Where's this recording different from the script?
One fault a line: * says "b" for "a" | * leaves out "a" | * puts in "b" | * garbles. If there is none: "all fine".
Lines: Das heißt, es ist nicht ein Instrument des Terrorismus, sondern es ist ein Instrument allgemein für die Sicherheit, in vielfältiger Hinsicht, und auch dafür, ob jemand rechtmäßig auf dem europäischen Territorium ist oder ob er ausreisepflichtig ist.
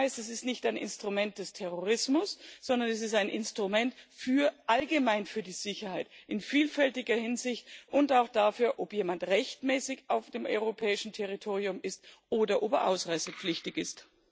all fine